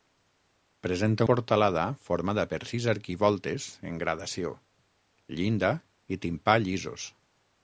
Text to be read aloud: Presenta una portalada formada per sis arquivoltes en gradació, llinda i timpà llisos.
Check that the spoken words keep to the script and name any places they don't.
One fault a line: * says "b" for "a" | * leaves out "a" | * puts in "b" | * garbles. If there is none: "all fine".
* leaves out "una"